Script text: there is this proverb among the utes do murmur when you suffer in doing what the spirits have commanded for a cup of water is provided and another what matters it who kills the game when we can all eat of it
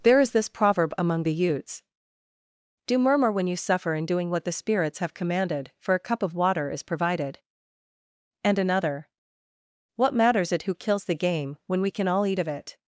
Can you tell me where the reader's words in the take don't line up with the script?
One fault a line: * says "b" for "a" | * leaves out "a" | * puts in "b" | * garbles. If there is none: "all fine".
all fine